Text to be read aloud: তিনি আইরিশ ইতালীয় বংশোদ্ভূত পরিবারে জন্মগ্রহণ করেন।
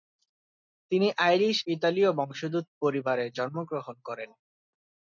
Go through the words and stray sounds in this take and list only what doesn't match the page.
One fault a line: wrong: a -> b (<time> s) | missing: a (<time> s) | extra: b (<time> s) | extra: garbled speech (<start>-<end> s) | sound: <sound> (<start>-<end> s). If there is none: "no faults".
no faults